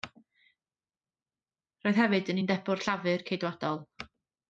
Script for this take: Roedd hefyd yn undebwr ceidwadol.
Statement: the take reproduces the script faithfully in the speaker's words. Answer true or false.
false